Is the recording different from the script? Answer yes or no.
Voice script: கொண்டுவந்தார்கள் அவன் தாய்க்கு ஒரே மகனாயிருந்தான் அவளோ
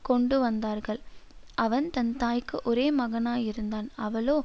yes